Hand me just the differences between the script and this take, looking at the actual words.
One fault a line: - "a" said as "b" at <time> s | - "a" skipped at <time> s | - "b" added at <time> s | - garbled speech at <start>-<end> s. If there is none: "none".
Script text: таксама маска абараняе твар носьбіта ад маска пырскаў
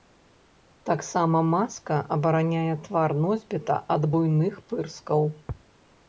- "маска" said as "буйных" at 4.1 s